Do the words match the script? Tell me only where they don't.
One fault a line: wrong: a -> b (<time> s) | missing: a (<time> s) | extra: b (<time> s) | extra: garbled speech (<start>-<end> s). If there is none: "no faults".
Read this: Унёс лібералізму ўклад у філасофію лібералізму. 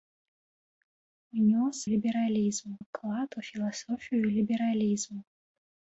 no faults